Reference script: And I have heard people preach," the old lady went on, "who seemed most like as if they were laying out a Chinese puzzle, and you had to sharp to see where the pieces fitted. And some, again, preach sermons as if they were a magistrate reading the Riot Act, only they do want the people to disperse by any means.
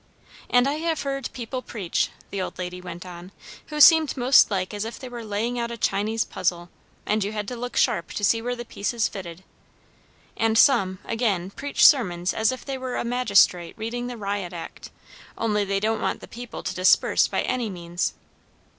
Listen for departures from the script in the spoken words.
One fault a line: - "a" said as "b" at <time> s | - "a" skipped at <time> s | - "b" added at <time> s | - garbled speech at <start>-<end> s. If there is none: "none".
- "look" added at 7.5 s
- "do" said as "don't" at 15.8 s